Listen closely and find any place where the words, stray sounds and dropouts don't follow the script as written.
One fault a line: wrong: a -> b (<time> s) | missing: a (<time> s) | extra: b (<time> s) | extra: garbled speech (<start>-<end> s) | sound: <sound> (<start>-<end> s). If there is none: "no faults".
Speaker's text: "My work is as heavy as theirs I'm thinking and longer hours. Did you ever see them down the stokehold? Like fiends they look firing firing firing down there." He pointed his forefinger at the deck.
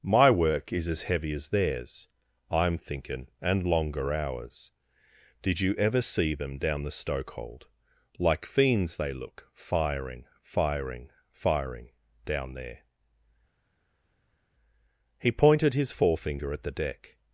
no faults